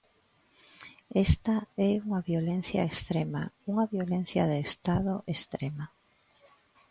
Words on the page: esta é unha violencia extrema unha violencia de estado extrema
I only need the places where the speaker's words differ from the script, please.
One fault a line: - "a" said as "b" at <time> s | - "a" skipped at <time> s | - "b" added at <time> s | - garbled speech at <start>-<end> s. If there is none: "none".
none